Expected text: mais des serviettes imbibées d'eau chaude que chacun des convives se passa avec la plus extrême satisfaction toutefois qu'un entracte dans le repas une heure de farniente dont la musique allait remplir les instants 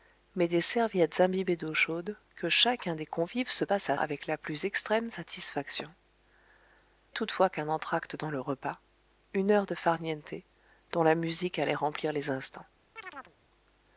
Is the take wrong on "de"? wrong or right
right